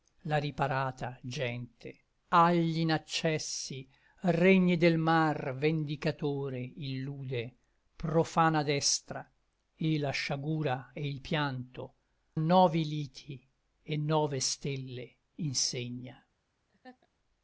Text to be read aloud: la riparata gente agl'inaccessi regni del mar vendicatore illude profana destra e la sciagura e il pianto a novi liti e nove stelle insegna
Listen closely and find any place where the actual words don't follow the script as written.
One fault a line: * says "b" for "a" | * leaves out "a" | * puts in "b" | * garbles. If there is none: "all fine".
* leaves out "a"